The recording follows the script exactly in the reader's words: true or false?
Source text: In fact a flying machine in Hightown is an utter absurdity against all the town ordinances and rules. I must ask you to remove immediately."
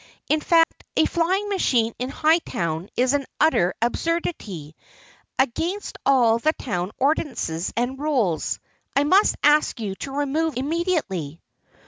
true